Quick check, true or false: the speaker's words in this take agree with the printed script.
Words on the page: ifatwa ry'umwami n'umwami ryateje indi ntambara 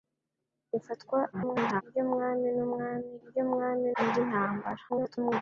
false